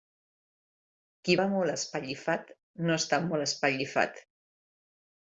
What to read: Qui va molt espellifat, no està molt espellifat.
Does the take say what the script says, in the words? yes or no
yes